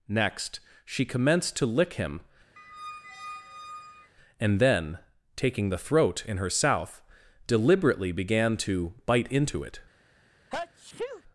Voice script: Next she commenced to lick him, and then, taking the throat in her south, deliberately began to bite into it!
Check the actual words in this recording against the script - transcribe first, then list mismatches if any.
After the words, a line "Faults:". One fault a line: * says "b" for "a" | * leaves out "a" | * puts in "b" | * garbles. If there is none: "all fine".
Next she commenced to lick him, and then, taking the throat in her south, deliberately began to bite into it!
Faults:
all fine